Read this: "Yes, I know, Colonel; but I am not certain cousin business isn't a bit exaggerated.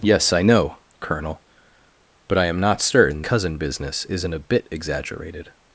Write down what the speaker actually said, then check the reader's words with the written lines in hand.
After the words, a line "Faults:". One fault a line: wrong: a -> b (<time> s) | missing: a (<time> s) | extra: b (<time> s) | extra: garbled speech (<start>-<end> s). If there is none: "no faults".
"Yes, I know, Colonel; but I am not certain cousin business isn't a bit exaggerated.
Faults:
no faults